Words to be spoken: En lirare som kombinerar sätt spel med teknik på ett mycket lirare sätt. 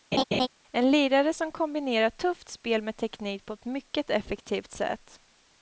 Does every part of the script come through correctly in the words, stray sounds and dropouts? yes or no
no